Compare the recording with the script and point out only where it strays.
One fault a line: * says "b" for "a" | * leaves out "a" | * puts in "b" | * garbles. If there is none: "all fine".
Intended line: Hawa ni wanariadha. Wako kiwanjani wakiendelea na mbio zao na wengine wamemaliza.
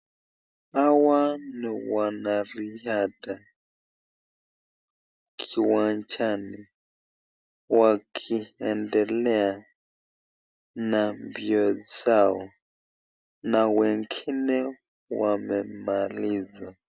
* leaves out "Wako"